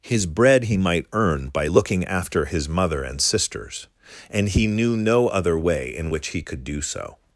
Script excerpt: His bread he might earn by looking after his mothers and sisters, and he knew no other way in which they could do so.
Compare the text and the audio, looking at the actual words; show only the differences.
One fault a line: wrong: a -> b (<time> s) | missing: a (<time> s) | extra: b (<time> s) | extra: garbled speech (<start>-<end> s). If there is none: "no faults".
wrong: mothers -> mother (2.7 s)
wrong: they -> he (6.3 s)